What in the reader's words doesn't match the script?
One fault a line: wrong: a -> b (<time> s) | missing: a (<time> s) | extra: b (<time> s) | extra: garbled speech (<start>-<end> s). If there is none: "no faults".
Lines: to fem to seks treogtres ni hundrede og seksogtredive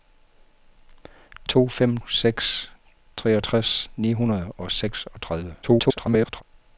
missing: to (2.0 s)
extra: garbled speech (5.6-6.4 s)